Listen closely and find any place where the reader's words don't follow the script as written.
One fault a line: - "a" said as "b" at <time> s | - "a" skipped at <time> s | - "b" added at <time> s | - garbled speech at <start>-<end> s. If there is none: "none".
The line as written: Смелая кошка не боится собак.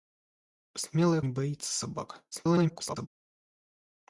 - "кошка" skipped at 1.2 s
- garbled speech at 2.3-3.1 s